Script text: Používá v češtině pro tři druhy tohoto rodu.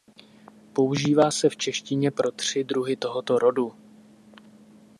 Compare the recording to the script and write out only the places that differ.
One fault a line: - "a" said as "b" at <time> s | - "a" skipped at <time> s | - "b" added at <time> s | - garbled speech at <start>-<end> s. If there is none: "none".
- "se" added at 1.3 s